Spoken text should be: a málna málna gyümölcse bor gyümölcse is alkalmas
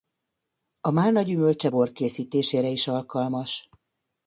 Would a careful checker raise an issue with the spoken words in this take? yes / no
yes